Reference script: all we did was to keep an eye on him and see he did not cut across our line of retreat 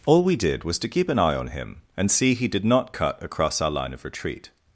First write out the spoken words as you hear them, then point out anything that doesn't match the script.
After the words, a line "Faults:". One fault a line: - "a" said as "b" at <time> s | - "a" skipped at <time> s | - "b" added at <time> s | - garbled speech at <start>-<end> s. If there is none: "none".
all we did was to keep an eye on him and see he did not cut across our line of retreat
Faults:
none